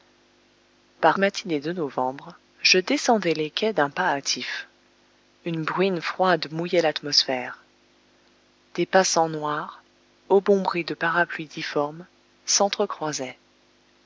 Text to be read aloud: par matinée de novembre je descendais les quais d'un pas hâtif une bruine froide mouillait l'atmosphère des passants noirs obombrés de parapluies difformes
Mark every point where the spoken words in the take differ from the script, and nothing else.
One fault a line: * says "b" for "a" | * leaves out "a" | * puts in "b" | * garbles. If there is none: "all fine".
all fine